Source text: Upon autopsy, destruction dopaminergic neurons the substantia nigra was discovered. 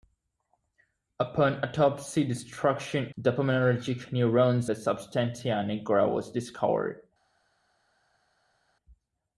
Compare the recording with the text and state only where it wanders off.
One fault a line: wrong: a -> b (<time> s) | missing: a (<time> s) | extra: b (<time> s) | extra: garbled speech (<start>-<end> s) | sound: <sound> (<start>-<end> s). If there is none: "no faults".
no faults